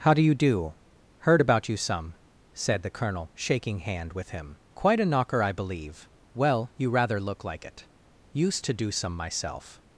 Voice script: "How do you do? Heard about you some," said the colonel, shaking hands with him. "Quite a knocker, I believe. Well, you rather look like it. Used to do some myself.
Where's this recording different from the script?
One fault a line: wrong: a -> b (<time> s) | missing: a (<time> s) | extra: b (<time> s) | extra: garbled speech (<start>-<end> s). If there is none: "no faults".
wrong: hands -> hand (3.8 s)